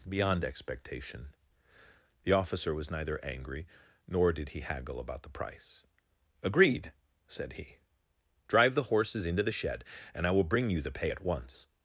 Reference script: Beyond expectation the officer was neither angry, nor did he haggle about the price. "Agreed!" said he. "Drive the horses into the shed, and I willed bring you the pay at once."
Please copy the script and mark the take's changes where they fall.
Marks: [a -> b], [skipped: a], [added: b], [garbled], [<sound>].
Beyond expectation the officer was neither angry, nor did he haggle about the price. "Agreed!" said he. "Drive the horses into the shed, and I [willed -> will] bring you the pay at once."